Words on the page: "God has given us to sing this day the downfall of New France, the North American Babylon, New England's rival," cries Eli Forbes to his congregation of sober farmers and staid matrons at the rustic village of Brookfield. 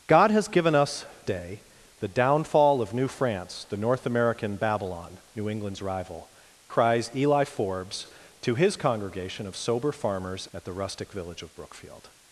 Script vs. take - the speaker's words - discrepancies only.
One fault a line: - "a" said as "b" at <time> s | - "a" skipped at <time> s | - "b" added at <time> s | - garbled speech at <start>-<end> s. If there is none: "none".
- "to sing this" skipped at 1.1 s
- "and staid matrons" skipped at 10.5 s